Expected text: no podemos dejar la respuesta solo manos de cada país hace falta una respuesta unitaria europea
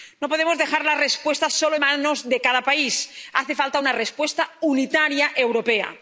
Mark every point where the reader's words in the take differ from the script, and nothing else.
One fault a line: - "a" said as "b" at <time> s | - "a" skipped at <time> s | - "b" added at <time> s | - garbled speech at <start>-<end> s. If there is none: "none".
none